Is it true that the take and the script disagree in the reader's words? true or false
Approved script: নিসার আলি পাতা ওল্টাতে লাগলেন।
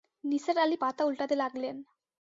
false